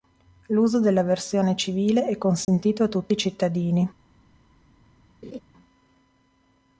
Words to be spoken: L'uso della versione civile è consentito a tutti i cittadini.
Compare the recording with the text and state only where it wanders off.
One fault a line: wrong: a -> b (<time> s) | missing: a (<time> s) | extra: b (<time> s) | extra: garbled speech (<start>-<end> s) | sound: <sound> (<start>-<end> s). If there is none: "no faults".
sound: dropout (2.4-2.5 s)
sound: laugh (5.2-5.4 s)